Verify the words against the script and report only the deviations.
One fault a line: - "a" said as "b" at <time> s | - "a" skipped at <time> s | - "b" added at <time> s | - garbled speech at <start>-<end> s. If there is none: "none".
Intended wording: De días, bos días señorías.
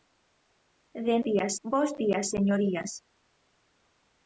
none